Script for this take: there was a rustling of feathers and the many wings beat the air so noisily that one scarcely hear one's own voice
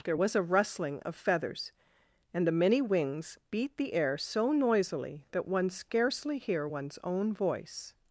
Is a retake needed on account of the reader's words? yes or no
no